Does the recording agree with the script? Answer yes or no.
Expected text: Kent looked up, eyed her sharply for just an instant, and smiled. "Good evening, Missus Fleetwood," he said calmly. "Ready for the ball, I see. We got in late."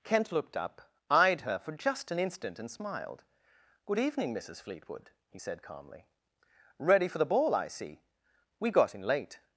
no